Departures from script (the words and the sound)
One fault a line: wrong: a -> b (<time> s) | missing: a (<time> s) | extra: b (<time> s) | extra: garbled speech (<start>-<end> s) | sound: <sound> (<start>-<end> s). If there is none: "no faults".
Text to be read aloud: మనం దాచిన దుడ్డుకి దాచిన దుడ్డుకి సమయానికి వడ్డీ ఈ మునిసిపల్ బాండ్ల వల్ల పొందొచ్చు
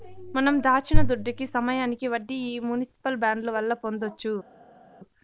missing: దాచిన దుడ్డుకి (1.4 s)